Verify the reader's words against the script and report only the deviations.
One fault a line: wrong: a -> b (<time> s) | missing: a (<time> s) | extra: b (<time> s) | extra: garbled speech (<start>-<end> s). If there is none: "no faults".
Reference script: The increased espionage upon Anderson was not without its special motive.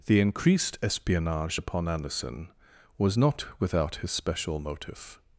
wrong: its -> his (3.9 s)